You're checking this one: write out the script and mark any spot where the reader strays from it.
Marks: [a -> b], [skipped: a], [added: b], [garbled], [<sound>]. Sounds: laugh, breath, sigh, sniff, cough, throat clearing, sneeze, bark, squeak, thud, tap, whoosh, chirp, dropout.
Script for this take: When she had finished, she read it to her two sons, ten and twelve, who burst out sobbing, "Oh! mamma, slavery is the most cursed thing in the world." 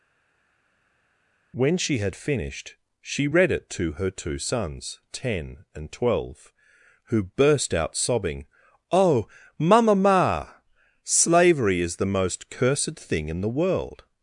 When she had finished, she read it to her two sons, ten and twelve, who burst out sobbing, "Oh! mamma, [added: ma] slavery is the most cursed thing in the world."